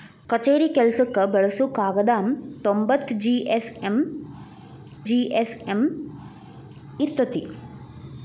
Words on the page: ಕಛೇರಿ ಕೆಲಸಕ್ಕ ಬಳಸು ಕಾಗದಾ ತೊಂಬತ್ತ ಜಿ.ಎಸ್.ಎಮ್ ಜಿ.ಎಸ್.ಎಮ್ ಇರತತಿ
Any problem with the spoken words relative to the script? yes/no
no